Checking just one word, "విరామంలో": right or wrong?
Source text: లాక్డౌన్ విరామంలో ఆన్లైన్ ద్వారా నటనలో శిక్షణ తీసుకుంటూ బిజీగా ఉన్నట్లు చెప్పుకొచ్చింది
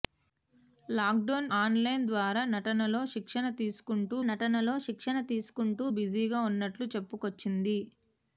wrong